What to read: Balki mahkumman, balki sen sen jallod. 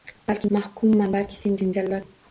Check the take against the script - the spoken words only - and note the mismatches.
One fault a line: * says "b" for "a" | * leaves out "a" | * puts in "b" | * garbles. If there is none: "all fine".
all fine